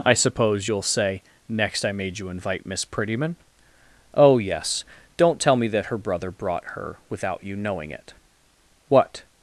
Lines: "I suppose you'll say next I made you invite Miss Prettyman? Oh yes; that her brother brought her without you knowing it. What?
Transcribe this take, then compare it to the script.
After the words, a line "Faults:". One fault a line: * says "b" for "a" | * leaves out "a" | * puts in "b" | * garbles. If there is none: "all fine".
"I suppose you'll say next I made you invite Miss Prettyman? Oh yes; don't tell me that her brother brought her without you knowing it. What?
Faults:
* puts in "don't tell me"